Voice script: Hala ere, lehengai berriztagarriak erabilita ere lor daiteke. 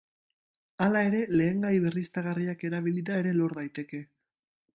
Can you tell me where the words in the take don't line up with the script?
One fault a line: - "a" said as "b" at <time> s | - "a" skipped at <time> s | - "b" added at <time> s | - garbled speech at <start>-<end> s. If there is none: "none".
none